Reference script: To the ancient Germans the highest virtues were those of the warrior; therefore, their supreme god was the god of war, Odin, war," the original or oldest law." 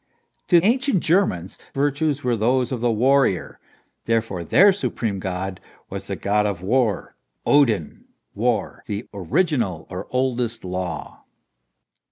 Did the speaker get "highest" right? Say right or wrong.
wrong